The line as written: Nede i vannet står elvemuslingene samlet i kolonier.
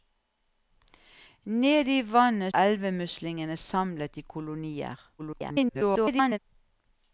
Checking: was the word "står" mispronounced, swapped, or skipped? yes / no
yes